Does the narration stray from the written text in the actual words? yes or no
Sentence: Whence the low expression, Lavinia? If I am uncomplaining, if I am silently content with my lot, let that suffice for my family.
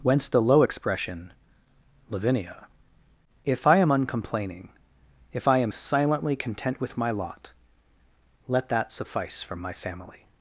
no